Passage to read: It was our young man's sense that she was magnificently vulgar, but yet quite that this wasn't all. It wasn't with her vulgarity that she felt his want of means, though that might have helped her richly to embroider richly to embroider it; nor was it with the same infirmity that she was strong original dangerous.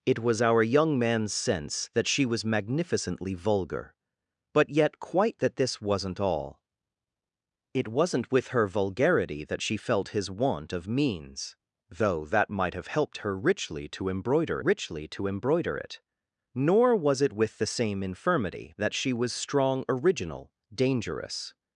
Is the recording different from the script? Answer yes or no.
no